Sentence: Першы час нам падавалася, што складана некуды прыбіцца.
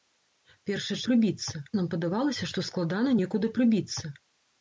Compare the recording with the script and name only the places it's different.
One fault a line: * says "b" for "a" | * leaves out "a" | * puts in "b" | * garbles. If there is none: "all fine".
* says "прыбіцца" for "час"